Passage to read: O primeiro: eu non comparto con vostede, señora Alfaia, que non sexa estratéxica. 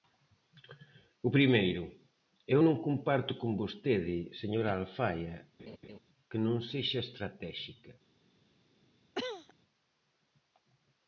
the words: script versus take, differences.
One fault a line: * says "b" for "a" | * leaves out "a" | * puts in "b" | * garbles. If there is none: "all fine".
all fine